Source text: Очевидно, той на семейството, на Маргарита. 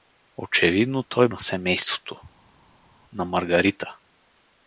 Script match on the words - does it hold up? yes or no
yes